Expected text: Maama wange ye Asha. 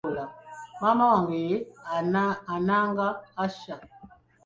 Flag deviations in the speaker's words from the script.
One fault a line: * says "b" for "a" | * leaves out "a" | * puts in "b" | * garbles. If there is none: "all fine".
* puts in "Ananga"